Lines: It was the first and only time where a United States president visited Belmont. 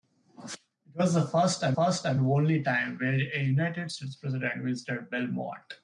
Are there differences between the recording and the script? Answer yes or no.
yes